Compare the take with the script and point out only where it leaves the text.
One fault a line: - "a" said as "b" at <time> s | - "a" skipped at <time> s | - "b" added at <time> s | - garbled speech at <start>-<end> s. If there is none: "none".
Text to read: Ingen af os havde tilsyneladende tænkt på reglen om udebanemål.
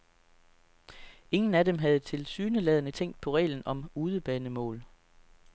- "os" said as "dem" at 1.6 s